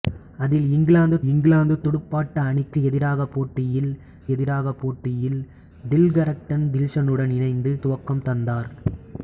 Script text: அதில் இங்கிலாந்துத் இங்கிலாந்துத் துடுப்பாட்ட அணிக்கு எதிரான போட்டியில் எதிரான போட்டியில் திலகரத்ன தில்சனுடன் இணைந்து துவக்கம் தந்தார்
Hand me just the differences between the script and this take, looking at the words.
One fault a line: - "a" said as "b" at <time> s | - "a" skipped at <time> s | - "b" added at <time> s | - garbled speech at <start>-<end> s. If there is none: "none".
none